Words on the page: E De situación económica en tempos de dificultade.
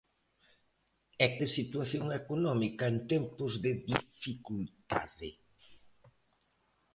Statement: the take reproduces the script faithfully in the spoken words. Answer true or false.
true